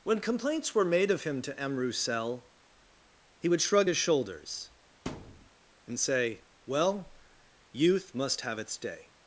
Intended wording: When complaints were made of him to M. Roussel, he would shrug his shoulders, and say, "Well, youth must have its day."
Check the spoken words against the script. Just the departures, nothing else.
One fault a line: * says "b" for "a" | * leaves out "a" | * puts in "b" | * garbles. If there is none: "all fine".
all fine